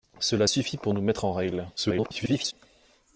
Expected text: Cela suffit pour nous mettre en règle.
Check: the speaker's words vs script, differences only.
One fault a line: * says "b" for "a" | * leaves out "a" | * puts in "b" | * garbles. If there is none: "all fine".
* garbles